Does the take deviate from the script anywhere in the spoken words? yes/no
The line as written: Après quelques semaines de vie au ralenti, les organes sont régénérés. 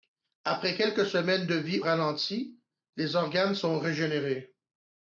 yes